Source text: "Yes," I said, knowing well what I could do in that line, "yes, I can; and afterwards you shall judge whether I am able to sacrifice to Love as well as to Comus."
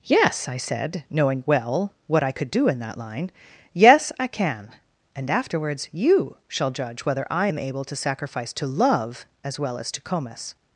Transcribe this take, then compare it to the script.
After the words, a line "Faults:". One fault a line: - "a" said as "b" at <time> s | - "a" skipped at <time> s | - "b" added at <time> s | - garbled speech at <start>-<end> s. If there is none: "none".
"Yes," I said, knowing well what I could do in that line, "yes, I can; and afterwards you shall judge whether I am able to sacrifice to Love as well as to Comus."
Faults:
none